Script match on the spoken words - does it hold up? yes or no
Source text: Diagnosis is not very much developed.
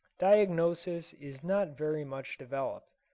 yes